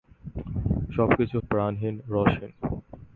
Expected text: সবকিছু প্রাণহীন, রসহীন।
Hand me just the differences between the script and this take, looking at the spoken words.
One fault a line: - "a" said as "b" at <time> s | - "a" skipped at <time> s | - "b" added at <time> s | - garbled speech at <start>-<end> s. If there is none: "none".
none